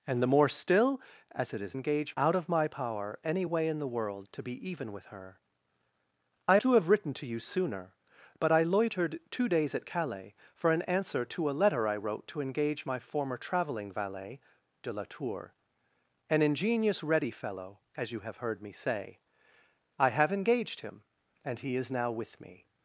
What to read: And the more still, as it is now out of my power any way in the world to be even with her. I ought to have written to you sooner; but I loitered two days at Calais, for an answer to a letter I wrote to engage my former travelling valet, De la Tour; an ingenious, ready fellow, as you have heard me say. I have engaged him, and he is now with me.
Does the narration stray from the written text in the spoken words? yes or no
yes